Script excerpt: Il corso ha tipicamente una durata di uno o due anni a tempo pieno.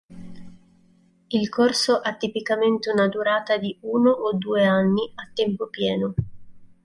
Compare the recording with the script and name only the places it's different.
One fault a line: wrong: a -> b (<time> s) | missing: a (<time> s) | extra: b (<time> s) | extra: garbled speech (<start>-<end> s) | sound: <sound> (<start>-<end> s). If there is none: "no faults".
no faults